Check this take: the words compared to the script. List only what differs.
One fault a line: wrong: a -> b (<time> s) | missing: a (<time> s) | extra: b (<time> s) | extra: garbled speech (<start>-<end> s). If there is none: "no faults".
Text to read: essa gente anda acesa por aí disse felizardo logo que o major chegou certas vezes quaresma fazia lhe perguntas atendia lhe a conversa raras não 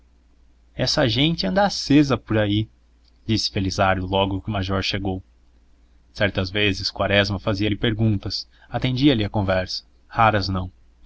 no faults